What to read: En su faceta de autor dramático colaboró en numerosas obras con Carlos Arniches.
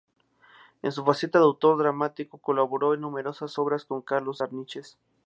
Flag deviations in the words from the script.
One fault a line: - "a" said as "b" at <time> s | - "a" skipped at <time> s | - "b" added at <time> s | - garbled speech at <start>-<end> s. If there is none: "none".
none